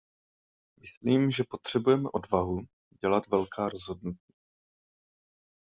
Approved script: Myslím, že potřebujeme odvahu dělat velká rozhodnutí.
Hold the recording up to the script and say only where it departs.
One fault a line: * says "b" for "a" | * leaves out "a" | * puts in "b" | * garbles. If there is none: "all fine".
all fine